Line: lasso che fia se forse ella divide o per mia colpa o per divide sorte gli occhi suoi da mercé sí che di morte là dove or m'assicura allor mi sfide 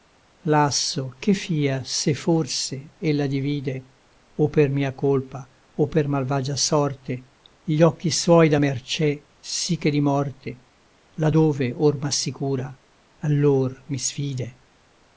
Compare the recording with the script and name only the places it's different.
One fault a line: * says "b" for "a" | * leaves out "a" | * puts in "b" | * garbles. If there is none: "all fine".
* says "malvagia" for "divide"